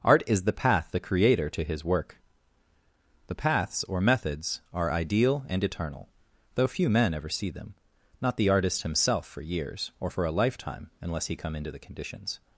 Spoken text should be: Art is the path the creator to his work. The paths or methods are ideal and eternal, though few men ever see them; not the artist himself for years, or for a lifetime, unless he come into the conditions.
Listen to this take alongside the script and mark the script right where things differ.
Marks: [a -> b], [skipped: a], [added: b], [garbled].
Art is the path the creator to his work. The paths or methods are ideal and eternal, though few men ever see them; not the artist himself for years, or for a lifetime, unless he come into the conditions.